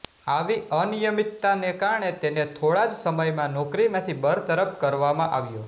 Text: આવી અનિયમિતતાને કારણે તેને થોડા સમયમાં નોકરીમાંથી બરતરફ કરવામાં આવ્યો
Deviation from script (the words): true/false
true